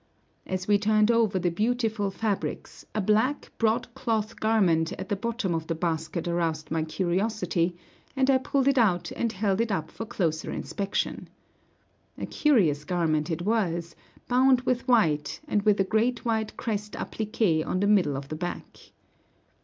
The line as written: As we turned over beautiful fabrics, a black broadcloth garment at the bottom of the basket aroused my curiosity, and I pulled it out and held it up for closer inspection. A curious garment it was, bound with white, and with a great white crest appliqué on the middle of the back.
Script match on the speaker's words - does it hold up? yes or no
no